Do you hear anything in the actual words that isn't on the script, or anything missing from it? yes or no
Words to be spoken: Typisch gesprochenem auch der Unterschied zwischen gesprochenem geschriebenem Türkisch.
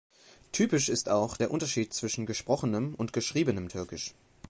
yes